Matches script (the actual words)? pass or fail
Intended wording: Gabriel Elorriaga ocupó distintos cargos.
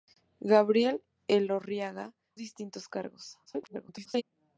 fail